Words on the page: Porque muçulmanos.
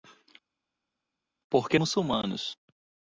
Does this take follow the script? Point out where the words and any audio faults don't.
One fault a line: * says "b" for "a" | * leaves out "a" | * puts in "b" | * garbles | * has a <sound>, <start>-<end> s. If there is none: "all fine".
all fine